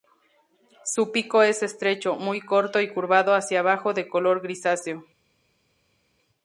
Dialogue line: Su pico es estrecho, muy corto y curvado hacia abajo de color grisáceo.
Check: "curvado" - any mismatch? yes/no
no